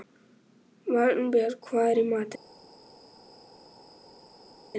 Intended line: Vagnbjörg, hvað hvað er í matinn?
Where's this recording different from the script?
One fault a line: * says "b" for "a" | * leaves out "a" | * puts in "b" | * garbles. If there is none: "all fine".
* leaves out "hvað"